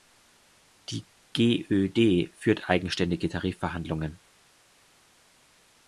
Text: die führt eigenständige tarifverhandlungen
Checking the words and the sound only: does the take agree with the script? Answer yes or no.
no